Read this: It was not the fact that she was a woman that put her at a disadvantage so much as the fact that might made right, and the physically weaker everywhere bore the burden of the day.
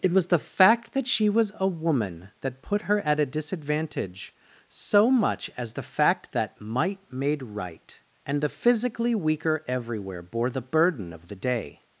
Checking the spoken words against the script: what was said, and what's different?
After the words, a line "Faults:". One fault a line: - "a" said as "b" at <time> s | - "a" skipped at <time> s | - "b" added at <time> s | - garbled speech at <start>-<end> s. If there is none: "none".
It was the fact that she was a woman that put her at a disadvantage so much as the fact that might made right, and the physically weaker everywhere bore the burden of the day.
Faults:
- "not" skipped at 0.3 s